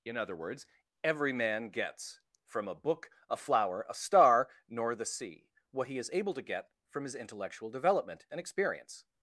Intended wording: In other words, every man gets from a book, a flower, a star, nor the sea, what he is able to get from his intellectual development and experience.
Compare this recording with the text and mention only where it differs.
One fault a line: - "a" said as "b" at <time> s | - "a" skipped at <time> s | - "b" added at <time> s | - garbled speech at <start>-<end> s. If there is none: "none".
none